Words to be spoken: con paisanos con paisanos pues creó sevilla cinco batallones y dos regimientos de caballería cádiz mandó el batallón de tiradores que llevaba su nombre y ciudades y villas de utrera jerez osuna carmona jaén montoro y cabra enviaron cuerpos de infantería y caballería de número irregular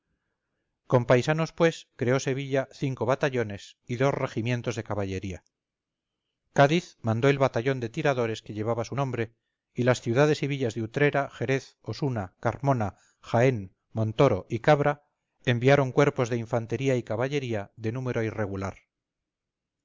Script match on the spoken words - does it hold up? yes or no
no